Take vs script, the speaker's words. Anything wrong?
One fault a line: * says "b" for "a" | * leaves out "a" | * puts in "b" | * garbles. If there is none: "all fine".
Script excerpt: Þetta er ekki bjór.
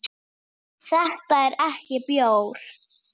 all fine